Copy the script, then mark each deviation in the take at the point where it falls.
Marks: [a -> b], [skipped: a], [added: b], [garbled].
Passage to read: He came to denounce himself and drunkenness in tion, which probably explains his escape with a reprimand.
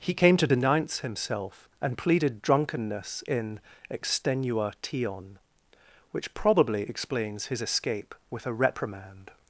He came to denounce himself and [added: pleaded] drunkenness in [added: extenua] tion, which probably explains his escape with a reprimand.